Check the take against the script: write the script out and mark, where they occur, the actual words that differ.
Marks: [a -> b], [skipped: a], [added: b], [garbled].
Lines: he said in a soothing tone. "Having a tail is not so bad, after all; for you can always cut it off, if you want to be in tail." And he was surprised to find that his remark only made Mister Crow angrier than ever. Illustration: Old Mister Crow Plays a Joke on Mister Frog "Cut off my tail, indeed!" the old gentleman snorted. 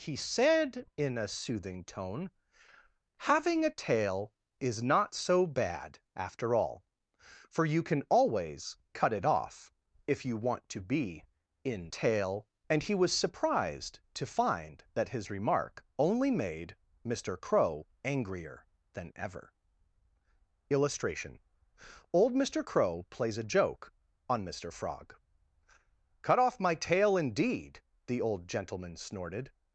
he said in a soothing tone. "Having a tail is not so bad, after all; for you can always cut it off, if you want to be in tail." And he was surprised to find that his remark only made Mister Crow angrier than ever. Illustration: Old Mister Crow Plays a Joke on Mister Frog "Cut off my tail, indeed!" the old gentleman snorted.